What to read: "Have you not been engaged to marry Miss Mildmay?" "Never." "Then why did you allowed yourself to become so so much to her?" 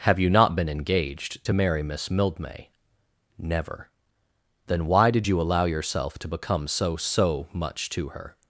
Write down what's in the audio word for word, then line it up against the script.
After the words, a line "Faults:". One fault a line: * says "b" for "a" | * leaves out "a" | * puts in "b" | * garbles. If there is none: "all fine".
"Have you not been engaged to marry Miss Mildmay?" "Never." "Then why did you allow yourself to become so so much to her?"
Faults:
* says "allow" for "allowed"